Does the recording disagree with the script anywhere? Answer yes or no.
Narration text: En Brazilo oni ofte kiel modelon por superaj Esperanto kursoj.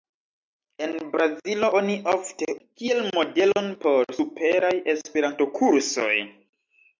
no